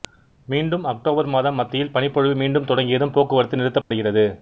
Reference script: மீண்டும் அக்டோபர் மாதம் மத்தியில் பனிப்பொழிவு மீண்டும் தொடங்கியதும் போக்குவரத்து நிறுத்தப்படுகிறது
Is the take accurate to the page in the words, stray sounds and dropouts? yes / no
no